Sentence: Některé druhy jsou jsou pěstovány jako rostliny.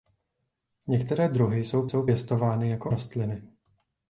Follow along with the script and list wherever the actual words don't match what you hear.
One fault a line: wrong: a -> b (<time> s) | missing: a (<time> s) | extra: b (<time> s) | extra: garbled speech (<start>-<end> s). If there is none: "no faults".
no faults